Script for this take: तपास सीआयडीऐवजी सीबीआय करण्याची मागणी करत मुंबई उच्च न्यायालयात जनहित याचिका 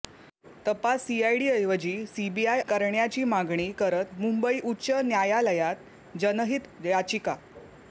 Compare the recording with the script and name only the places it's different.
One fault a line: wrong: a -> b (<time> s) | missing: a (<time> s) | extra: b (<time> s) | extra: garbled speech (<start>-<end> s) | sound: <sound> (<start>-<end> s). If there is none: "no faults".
no faults